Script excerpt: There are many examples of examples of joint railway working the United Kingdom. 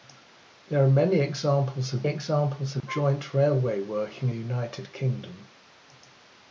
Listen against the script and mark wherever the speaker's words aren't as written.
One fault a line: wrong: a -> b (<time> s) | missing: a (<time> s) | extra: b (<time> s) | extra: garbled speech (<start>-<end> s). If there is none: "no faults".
no faults